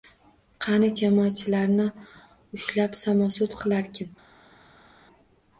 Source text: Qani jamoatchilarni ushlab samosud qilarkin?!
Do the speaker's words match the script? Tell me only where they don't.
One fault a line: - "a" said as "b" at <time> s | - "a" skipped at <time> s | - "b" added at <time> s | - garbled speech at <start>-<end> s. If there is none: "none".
none